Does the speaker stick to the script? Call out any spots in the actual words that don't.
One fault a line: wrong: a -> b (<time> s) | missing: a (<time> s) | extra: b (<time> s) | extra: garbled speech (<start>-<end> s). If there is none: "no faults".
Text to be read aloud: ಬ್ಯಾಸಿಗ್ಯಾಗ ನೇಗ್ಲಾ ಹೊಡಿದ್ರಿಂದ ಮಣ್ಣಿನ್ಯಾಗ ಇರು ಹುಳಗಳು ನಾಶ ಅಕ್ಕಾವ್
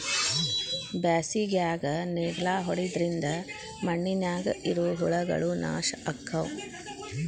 no faults